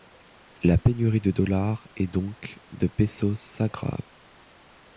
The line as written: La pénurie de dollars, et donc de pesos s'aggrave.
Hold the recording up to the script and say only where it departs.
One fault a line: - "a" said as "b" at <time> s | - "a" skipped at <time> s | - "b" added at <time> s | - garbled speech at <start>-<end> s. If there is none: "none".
none